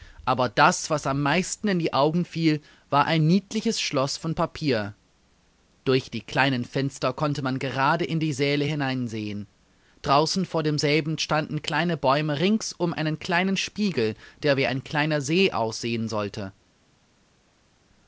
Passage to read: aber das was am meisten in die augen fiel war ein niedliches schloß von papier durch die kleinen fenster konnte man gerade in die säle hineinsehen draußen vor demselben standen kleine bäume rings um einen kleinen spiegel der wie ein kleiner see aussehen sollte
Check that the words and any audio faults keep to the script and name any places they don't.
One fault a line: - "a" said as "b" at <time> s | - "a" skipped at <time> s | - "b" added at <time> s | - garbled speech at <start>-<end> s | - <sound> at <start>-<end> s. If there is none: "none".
none